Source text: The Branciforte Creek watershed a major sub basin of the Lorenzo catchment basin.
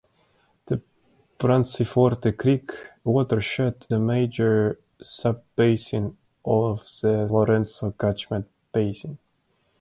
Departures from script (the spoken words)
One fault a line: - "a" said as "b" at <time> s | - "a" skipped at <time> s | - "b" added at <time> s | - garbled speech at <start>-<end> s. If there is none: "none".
none